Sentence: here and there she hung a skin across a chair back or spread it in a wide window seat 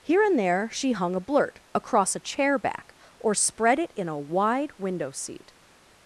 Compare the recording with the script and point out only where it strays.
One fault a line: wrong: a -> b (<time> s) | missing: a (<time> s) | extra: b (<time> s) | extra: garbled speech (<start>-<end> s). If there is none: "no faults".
wrong: skin -> blurt (1.2 s)